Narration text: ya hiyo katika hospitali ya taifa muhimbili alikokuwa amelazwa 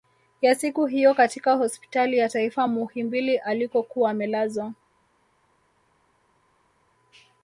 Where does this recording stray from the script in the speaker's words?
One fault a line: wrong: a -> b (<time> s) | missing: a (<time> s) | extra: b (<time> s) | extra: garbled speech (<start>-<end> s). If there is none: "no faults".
extra: siku (0.6 s)